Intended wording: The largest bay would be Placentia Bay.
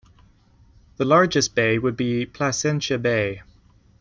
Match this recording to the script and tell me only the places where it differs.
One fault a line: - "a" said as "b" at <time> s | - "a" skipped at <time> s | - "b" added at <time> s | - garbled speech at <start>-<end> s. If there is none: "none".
none